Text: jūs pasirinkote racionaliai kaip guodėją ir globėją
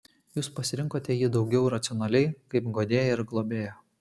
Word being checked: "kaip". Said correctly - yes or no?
yes